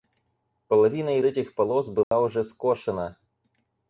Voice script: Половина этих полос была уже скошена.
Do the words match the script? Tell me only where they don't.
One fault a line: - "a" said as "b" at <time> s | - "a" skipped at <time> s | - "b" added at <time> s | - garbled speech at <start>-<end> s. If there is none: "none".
none